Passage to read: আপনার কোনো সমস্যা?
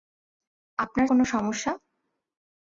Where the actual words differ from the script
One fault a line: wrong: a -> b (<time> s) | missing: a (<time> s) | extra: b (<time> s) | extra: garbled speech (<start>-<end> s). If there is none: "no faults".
no faults